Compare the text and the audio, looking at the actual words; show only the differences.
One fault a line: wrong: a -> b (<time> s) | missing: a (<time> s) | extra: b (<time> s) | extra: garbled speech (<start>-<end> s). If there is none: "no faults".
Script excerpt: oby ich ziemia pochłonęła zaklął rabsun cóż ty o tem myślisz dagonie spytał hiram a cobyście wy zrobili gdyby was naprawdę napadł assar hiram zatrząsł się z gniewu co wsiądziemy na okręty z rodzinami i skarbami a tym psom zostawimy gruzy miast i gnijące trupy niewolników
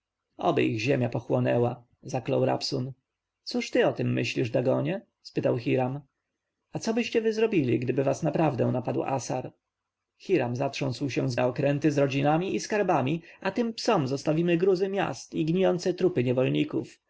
missing: gniewu co wsiądziemy (11.3 s)